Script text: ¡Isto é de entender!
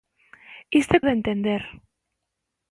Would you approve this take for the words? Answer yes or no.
yes